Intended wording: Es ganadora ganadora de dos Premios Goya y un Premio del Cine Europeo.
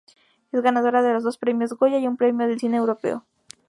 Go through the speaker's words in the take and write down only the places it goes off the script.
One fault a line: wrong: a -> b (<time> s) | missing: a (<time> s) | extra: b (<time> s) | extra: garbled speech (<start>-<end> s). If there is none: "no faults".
missing: ganadora (1.0 s)